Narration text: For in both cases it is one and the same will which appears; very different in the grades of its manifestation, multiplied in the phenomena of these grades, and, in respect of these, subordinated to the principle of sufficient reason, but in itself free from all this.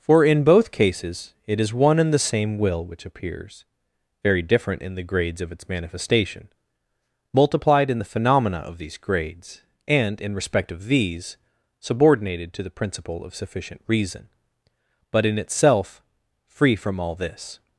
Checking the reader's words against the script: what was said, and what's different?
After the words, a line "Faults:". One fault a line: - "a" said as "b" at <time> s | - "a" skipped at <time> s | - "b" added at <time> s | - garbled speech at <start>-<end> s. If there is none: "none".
For in both cases it is one and the same will which appears; very different in the grades of its manifestation, multiplied in the phenomena of these grades, and, in respect of these, subordinated to the principle of sufficient reason, but in itself free from all this.
Faults:
none